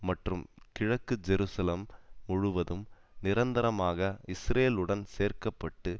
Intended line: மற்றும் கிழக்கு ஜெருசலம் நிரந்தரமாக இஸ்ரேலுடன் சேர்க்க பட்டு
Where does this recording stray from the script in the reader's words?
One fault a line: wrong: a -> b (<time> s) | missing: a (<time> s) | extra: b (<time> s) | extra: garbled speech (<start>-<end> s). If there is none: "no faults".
extra: முழுவதும் (2.3 s)